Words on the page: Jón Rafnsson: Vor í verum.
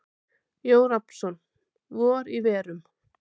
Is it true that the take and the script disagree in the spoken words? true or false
false